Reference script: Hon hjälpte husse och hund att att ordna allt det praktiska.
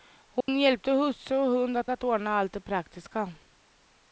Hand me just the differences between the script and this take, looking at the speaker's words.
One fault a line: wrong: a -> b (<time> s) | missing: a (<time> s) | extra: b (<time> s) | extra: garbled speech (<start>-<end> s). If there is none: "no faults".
no faults